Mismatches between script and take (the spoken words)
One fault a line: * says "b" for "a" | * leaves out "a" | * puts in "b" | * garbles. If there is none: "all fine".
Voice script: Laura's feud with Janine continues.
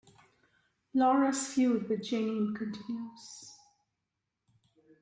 all fine